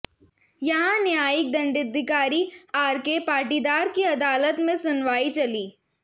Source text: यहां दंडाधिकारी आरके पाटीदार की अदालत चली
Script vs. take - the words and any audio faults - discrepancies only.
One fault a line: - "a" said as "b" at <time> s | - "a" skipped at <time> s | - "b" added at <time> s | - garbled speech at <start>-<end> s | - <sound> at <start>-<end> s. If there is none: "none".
- "न्यायिक" added at 1.0 s
- "में सुनवाई" added at 4.6 s